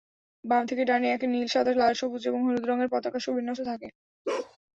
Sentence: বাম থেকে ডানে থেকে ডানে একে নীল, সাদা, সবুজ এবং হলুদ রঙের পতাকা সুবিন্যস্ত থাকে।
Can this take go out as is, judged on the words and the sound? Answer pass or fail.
fail